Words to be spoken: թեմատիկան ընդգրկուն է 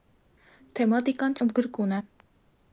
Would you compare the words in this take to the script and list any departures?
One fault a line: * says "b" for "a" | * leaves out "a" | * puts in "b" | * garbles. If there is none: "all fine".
all fine